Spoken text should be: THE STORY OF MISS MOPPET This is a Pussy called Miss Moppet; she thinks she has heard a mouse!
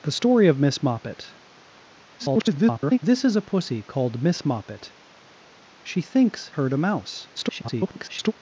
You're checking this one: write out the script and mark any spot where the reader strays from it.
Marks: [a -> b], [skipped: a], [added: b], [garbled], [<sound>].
THE STORY OF MISS MOPPET [garbled] This is a Pussy called Miss Moppet; she thinks [skipped: she has] heard a mouse! [garbled]